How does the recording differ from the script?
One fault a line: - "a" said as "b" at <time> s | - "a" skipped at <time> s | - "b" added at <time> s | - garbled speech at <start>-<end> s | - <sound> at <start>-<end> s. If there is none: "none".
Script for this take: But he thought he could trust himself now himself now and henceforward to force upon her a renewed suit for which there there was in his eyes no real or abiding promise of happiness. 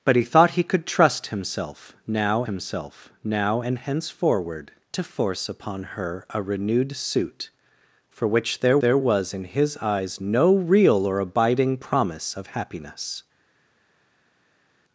none